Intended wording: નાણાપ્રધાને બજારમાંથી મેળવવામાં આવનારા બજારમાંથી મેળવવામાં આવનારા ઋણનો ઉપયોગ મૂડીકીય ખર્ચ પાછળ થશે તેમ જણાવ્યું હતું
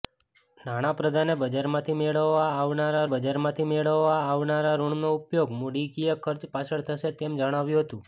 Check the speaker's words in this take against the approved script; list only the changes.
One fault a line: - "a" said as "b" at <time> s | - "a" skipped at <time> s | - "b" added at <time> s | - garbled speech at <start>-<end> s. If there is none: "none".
none